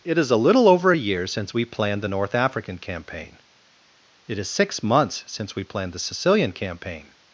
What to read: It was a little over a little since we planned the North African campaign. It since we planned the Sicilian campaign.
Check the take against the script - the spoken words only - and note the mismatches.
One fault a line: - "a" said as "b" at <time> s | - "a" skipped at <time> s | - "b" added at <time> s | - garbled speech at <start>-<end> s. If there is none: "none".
- "was" said as "is" at 0.2 s
- "little" said as "year" at 1.0 s
- "is six months" added at 4.4 s